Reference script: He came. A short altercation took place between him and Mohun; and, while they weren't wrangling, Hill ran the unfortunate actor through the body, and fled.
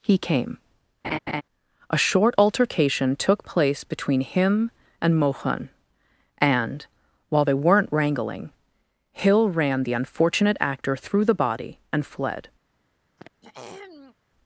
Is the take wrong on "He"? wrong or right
right